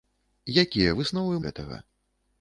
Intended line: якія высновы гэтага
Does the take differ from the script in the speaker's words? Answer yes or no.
no